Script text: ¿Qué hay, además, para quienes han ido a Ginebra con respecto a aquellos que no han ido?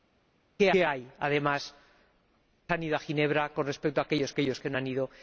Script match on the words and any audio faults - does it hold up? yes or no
no